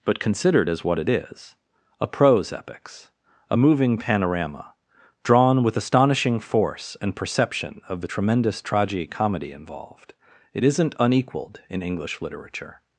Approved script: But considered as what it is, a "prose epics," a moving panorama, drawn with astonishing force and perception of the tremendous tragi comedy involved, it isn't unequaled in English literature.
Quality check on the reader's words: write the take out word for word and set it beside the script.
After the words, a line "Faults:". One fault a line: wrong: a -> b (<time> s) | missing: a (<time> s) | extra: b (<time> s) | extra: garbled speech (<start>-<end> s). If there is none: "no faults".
But considered as what it is, a "prose epics," a moving panorama, drawn with astonishing force and perception of the tremendous tragi comedy involved, it isn't unequaled in English literature.
Faults:
no faults